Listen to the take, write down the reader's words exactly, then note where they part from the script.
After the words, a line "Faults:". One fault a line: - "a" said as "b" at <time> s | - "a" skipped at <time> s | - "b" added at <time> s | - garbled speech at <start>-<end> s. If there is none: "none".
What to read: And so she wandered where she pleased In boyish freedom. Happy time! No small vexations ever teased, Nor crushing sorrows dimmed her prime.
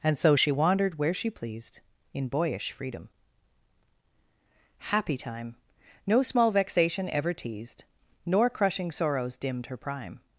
And so she wandered where she pleased In boyish freedom. Happy time! No small vexation ever teased, Nor crushing sorrows dimmed her prime.
Faults:
- "vexations" said as "vexation" at 6.5 s